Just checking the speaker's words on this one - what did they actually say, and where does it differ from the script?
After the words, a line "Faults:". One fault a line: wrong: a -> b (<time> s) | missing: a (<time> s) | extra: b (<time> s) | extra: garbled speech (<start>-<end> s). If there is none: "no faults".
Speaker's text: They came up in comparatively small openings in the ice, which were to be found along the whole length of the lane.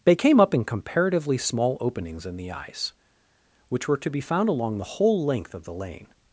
They came up in comparatively small openings in the ice, which were to be found along the whole length of the lane.
Faults:
no faults